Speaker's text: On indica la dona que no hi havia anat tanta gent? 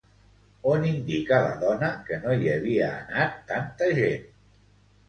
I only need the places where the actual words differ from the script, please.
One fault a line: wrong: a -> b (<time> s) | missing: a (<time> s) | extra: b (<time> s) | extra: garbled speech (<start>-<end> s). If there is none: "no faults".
no faults